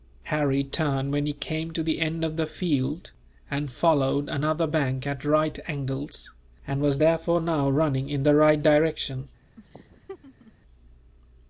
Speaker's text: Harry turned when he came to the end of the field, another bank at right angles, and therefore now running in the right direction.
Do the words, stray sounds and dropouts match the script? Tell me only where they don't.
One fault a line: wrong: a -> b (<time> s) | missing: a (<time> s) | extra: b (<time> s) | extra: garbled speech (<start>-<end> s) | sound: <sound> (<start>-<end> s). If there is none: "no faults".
extra: and followed (3.5 s)
extra: was (6.8 s)
sound: laugh (9.6-10.5 s)